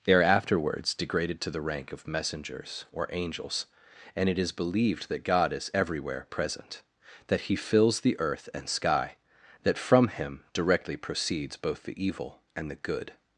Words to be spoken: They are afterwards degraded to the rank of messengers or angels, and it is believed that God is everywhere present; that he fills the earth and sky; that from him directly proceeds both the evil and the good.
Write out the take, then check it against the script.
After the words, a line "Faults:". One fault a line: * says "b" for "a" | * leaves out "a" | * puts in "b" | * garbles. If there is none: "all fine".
They are afterwards degraded to the rank of messengers or angels, and it is believed that God is everywhere present; that he fills the earth and sky; that from him directly proceeds both the evil and the good.
Faults:
all fine